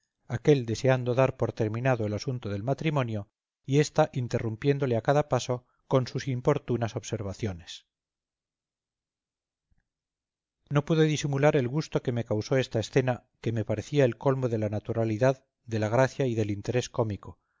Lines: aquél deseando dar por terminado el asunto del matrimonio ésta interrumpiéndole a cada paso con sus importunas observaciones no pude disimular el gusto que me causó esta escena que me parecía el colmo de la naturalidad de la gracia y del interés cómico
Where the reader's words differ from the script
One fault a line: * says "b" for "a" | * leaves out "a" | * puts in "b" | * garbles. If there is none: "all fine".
* puts in "y"